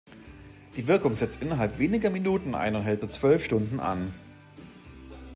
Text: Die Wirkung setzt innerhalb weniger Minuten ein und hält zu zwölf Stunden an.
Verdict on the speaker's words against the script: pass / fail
pass